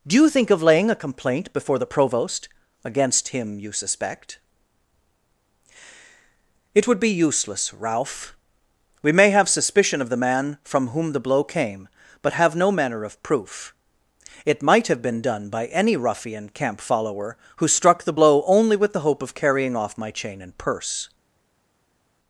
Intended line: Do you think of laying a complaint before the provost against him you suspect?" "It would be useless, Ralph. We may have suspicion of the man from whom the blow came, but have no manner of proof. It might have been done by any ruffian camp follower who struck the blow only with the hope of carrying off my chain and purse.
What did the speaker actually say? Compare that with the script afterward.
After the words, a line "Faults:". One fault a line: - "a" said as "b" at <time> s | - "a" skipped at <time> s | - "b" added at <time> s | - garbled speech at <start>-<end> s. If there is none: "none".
Do you think of laying a complaint before the provost against him you suspect?" "It would be useless, Ralph. We may have suspicion of the man from whom the blow came, but have no manner of proof. It might have been done by any ruffian camp follower who struck the blow only with the hope of carrying off my chain and purse.
Faults:
none